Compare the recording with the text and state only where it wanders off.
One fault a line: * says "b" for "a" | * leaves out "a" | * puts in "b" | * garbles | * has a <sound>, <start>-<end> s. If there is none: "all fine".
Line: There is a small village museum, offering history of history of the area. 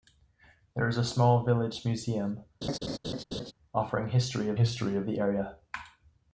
* has a laugh, 2.6-3.5 s